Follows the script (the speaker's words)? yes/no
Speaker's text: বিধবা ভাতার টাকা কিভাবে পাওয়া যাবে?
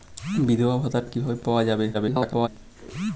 no